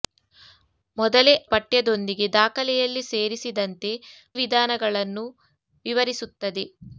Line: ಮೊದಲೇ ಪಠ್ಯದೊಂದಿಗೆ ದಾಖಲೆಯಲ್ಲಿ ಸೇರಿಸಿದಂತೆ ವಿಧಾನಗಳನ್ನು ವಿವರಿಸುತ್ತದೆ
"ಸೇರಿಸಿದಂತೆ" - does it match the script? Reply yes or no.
yes